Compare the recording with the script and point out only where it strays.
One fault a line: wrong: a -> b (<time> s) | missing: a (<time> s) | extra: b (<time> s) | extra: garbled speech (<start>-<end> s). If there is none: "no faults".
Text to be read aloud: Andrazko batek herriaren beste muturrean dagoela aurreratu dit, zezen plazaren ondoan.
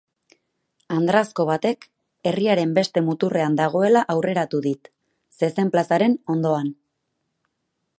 no faults